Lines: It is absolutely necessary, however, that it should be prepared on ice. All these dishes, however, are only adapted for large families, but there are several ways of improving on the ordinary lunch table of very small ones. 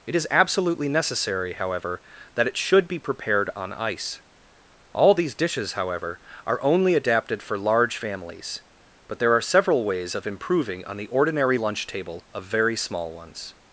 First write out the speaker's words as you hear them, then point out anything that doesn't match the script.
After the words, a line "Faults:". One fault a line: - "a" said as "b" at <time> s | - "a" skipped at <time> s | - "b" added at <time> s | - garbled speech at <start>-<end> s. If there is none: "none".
It is absolutely necessary, however, that it should be prepared on ice. All these dishes, however, are only adapted for large families, but there are several ways of improving on the ordinary lunch table of very small ones.
Faults:
none